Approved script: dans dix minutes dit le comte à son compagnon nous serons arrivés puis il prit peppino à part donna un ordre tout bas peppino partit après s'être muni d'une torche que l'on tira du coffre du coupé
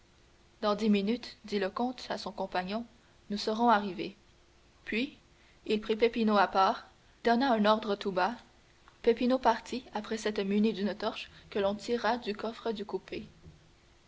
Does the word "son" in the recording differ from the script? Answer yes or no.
no